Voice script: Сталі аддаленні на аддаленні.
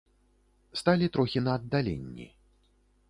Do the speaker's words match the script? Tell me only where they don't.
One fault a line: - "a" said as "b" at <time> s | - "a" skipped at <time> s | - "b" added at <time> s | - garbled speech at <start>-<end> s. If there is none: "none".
- "аддаленні" said as "трохі" at 1.1 s